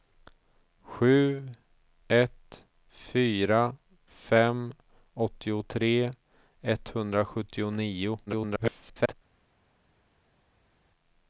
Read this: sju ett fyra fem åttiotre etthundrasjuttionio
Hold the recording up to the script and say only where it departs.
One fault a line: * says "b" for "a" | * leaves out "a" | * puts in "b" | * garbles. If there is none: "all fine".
* garbles